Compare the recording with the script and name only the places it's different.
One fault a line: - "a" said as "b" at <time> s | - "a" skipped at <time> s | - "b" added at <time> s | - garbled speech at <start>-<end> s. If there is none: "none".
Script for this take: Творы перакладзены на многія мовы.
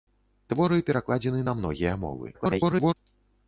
- garbled speech at 2.3-2.9 s